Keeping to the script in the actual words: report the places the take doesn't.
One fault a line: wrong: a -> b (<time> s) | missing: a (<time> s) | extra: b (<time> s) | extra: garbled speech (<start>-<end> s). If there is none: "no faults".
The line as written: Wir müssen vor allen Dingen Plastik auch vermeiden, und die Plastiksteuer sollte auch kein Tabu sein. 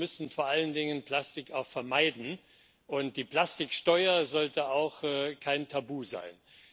no faults